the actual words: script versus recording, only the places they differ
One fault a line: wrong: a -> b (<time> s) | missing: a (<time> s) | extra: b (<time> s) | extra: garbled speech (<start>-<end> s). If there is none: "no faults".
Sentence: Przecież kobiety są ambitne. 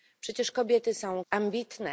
no faults